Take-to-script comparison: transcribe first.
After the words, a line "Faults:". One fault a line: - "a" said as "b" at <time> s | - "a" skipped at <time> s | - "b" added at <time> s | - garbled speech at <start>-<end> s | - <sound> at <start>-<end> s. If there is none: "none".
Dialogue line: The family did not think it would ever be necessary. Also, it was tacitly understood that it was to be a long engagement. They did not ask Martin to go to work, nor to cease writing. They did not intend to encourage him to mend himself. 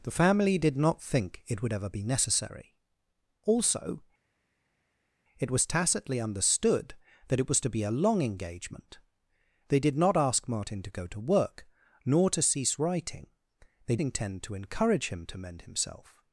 The family did not think it would ever be necessary. Also, it was tacitly understood that it was to be a long engagement. They did not ask Martin to go to work, nor to cease writing. They intend to encourage him to mend himself.
Faults:
- "did not" skipped at 14.0 s